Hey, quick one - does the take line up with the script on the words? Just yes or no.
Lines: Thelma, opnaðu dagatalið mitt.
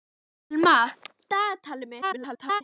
no